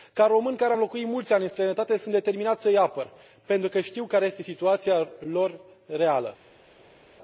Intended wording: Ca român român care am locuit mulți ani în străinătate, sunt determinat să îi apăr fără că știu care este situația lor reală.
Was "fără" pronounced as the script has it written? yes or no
no